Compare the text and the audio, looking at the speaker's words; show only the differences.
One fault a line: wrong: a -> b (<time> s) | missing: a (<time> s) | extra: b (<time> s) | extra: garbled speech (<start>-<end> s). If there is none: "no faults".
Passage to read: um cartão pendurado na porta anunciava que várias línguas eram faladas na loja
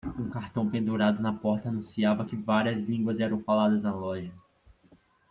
no faults